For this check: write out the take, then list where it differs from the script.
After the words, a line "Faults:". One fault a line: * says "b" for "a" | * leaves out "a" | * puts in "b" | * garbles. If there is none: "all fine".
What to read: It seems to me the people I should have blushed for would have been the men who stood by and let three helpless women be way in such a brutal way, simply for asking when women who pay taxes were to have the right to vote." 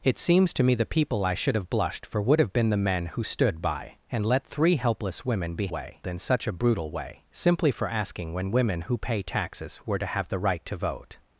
It seems to me the people I should have blushed for would have been the men who stood by and let three helpless women be way in such a brutal way, simply for asking when women who pay taxes were to have the right to vote."
Faults:
all fine